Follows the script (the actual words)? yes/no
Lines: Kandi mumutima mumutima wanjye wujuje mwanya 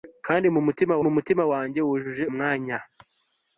yes